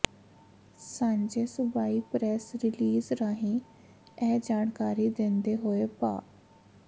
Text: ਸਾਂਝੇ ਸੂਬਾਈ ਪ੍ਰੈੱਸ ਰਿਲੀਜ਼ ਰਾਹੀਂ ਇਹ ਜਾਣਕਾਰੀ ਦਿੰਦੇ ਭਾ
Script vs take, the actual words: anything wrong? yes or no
yes